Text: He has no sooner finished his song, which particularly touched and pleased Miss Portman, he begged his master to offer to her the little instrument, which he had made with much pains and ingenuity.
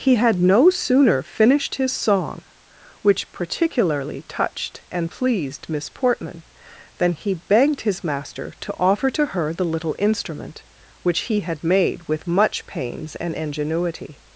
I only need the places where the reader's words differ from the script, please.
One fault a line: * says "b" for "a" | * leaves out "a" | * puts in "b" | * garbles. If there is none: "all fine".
* says "had" for "has"
* puts in "than"